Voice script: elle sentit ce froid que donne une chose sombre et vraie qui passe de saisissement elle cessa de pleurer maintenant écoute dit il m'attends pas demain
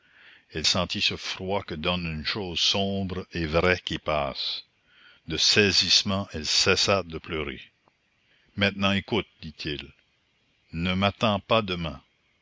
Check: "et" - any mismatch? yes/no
no